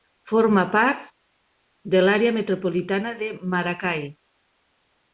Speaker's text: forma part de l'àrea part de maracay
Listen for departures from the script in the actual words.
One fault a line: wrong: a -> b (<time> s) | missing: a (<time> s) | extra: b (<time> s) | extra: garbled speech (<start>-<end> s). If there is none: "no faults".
wrong: part -> metropolitana (2.4 s)